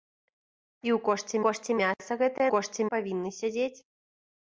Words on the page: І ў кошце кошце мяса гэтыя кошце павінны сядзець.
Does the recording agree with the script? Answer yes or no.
yes